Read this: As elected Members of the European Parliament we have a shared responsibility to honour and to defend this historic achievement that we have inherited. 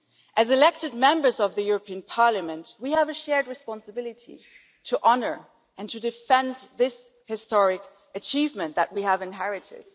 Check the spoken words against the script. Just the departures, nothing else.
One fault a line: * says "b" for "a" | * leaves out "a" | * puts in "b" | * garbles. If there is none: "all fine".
all fine